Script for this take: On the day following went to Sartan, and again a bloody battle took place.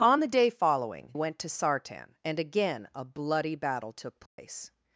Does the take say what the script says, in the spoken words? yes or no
yes